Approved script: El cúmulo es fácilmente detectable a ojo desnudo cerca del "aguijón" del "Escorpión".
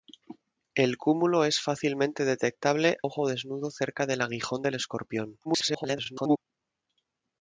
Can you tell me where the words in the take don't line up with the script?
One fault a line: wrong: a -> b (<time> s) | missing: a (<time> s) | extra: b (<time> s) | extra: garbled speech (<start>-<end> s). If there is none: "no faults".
missing: a (3.0 s)
extra: garbled speech (5.4-6.4 s)